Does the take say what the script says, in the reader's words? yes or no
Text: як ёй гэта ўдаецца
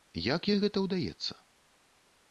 yes